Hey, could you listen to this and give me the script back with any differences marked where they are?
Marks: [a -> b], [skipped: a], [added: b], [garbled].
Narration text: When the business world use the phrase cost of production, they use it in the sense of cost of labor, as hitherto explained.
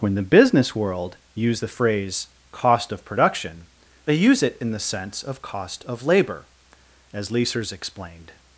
When the business world use the phrase cost of production, they use it in the sense of cost of labor, as [hitherto -> leasers] explained.